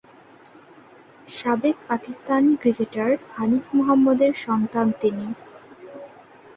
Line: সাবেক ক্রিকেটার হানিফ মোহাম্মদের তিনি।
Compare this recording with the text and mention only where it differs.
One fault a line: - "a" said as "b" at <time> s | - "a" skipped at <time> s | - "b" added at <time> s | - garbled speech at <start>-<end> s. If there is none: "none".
- "পাকিস্তানি" added at 1.9 s
- "সন্তান" added at 4.5 s